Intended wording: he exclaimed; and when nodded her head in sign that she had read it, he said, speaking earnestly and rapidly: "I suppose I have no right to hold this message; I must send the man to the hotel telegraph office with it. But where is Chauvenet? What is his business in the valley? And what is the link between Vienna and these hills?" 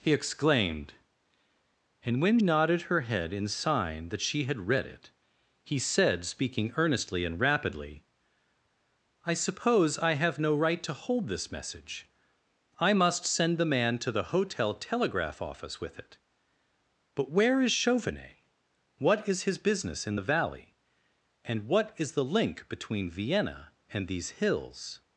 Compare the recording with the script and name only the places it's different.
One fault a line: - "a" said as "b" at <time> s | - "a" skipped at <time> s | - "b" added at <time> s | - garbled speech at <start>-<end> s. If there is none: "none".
none